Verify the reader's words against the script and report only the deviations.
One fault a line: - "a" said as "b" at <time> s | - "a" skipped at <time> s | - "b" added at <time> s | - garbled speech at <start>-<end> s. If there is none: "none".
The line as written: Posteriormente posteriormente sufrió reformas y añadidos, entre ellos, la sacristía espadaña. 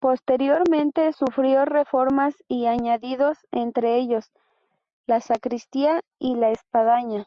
- "posteriormente" skipped at 1.1 s
- "y la" added at 6.2 s